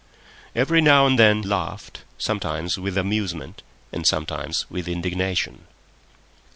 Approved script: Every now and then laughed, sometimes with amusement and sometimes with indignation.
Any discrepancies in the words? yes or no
no